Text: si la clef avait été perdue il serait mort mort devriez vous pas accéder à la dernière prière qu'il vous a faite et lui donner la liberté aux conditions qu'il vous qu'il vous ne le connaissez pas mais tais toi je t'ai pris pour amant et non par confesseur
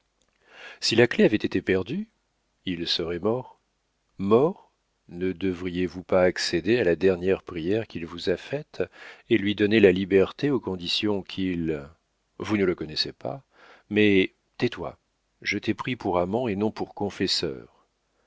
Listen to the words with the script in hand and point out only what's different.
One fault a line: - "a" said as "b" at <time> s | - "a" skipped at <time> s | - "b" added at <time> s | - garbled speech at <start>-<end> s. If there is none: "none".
- "ne" added at 5.1 s
- "qu'il vous" skipped at 12.6 s
- "par" said as "pour" at 16.7 s